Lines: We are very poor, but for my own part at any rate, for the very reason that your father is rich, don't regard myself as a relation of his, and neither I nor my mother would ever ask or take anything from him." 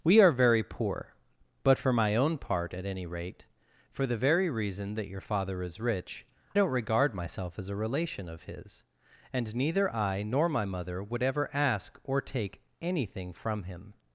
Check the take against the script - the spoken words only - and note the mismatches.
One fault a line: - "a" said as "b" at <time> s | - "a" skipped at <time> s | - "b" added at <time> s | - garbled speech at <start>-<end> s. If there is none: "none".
none